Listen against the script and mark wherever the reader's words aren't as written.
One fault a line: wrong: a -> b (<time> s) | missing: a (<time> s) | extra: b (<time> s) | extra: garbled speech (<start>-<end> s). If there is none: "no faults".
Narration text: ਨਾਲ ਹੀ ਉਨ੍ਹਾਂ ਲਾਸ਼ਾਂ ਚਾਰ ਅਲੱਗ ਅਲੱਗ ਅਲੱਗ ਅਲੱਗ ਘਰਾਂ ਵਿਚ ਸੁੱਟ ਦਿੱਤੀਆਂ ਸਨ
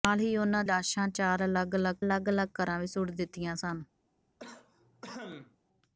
no faults